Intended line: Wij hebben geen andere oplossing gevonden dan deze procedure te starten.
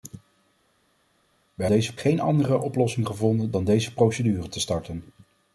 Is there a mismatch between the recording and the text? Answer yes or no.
yes